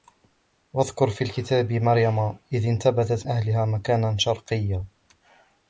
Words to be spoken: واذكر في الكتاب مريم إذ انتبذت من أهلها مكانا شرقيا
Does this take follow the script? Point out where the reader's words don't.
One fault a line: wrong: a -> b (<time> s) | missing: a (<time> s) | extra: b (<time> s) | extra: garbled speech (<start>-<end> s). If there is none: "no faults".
missing: من (3.3 s)